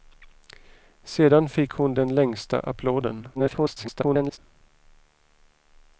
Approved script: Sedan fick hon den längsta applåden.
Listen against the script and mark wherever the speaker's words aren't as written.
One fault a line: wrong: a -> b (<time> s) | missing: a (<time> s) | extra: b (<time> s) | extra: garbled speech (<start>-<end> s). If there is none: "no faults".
extra: garbled speech (3.3-4.4 s)